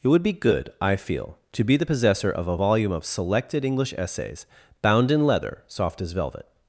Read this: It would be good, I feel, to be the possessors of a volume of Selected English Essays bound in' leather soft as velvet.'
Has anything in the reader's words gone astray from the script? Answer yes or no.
yes